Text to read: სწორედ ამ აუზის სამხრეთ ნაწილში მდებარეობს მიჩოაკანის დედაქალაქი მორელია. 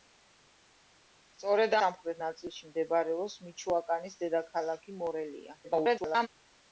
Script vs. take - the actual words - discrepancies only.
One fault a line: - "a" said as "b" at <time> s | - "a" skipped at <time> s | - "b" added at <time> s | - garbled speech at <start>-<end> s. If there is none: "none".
- "ამ აუზის" skipped at 1.8 s
- garbled speech at 5.6-6.3 s